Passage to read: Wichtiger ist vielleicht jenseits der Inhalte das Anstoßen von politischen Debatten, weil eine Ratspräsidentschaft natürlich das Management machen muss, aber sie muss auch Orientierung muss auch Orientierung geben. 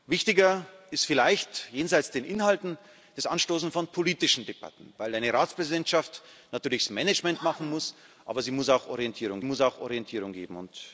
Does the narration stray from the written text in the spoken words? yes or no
no